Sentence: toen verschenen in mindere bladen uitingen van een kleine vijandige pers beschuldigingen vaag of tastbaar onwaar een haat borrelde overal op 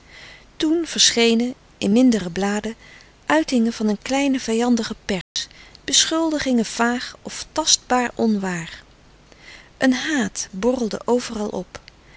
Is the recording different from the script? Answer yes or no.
no